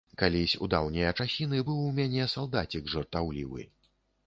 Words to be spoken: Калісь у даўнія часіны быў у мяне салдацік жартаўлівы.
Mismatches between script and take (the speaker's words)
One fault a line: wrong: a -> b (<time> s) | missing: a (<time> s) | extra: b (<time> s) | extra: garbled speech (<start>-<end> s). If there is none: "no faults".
no faults